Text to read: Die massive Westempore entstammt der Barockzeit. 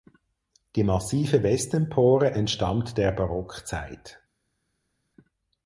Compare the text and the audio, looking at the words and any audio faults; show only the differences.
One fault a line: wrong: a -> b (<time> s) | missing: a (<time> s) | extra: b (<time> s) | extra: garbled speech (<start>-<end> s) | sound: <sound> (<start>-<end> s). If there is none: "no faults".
no faults